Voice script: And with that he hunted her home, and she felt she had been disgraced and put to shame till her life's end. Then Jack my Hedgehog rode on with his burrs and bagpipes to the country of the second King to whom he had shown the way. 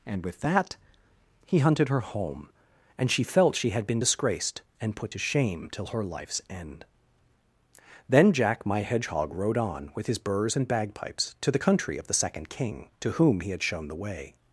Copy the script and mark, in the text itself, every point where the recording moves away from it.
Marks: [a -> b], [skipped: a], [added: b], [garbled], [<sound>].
And with that he hunted her home, and she felt she had been disgraced and put to shame till her life's end. Then Jack my Hedgehog rode on with his burrs and bagpipes to the country of the second King to whom he had shown the way.